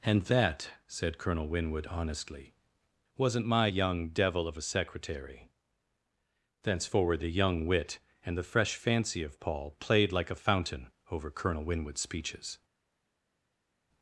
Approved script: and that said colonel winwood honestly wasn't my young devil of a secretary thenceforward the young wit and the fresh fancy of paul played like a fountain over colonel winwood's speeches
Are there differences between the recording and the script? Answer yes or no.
no